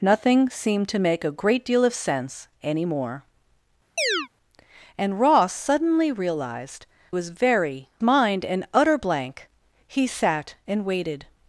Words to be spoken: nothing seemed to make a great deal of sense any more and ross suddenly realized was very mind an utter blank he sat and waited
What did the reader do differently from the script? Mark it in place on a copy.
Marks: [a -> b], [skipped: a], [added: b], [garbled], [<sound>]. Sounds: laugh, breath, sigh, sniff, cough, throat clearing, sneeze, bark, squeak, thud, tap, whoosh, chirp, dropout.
nothing seemed to make a great deal of sense any more [chirp] and ross suddenly realized was very mind an utter blank he sat and waited